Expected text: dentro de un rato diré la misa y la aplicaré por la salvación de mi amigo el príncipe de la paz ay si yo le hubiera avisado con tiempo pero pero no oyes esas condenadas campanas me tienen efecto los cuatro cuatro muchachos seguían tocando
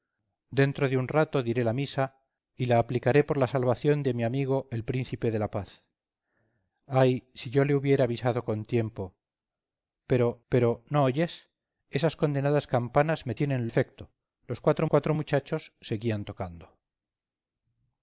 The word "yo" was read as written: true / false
true